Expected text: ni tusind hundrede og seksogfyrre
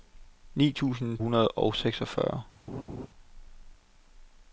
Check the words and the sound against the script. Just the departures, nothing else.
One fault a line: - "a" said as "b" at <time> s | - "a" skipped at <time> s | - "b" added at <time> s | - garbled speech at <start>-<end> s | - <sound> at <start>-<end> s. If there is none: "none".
- laugh at 2.7-3.1 s